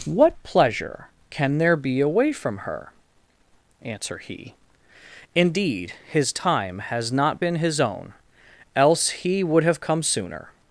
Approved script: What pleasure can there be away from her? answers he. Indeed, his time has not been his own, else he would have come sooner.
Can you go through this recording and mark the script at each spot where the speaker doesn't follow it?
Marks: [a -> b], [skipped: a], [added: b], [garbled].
What pleasure can there be away from her? [answers -> answer] he. Indeed, his time has not been his own, else he would have come sooner.